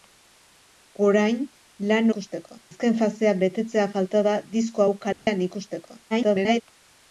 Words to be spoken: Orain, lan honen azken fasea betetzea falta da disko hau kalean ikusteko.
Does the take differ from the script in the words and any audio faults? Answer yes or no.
yes